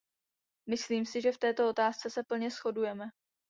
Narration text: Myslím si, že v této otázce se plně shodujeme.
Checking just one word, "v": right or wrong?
right